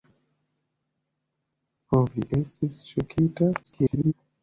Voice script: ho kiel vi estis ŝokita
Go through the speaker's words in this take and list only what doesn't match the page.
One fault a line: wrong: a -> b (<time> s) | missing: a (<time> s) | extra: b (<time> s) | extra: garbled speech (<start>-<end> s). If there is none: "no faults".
missing: kiel (2.0 s)
extra: garbled speech (3.6-4.1 s)